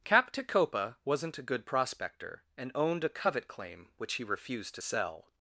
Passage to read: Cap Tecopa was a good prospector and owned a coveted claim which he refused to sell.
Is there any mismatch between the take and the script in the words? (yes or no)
yes